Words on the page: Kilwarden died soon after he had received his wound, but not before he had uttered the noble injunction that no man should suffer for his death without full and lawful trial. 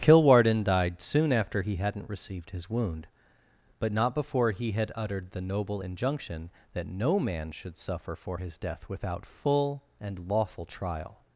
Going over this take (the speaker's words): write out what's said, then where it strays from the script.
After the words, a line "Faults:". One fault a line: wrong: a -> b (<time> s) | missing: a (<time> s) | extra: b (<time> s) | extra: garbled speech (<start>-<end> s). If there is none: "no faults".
Kilwarden died soon after he hadn't received his wound, but not before he had uttered the noble injunction that no man should suffer for his death without full and lawful trial.
Faults:
wrong: had -> hadn't (1.8 s)